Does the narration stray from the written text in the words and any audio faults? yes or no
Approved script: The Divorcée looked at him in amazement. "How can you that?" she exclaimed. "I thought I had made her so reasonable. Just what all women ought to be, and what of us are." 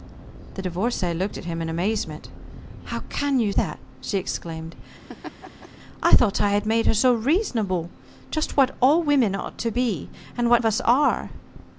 yes